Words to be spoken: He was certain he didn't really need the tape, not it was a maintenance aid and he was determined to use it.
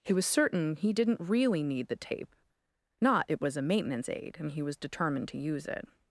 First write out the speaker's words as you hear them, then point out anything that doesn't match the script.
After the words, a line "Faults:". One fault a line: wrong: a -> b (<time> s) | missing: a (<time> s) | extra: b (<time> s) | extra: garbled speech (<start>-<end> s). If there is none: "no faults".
He was certain he didn't really need the tape, not it was a maintenance aid and he was determined to use it.
Faults:
no faults